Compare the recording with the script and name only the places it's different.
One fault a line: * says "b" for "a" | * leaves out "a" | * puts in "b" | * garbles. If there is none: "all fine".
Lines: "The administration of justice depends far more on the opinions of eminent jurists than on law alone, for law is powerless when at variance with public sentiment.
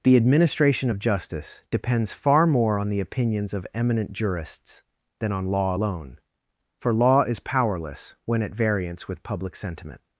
all fine